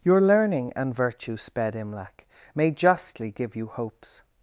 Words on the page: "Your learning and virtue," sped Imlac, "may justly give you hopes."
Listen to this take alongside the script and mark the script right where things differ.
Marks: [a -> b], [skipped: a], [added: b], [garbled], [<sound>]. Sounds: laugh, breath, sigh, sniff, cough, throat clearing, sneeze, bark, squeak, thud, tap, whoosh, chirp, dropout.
"Your learning and virtue," sped Imlac, "may justly give you hopes."